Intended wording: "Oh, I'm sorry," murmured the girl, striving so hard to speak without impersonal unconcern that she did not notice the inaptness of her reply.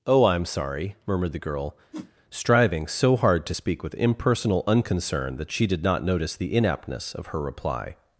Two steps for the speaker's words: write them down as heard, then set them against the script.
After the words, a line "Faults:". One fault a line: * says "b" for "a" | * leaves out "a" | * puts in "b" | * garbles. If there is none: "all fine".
"Oh, I'm sorry," murmured the girl, striving so hard to speak with impersonal unconcern that she did not notice the inaptness of her reply.
Faults:
* says "with" for "without"